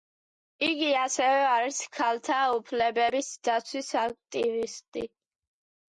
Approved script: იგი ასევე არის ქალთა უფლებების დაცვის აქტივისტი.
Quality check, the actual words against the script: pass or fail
pass